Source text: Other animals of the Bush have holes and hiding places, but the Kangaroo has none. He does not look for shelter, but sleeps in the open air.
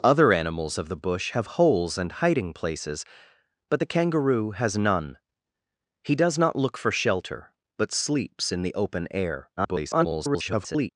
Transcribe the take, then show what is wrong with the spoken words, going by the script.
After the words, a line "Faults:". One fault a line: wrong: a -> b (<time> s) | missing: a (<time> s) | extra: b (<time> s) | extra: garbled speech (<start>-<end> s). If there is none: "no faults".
Other animals of the Bush have holes and hiding places, but the Kangaroo has none. He does not look for shelter, but sleeps in the open air. [garbled]
Faults:
extra: garbled speech (9.6-10.9 s)